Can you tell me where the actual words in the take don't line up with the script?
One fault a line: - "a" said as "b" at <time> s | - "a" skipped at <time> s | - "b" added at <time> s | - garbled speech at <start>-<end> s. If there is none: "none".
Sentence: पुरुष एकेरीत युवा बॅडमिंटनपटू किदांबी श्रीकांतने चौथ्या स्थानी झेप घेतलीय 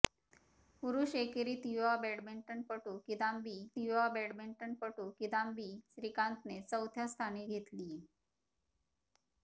- "युवा बॅडमिंटनपटू किदांबी" added at 3.8 s
- "झेप" skipped at 7.5 s